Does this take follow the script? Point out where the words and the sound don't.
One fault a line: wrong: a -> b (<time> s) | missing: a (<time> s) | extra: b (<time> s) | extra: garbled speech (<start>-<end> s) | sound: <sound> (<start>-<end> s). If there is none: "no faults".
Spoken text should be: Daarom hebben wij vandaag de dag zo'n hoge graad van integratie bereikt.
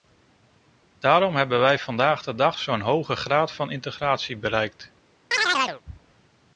sound: chirp (5.3-5.8 s)